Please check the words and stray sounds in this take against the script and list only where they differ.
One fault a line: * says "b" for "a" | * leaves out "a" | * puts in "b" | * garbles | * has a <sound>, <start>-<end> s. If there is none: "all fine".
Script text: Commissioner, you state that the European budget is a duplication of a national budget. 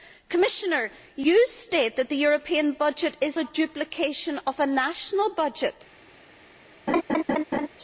* has a laugh, 6.9-7.7 s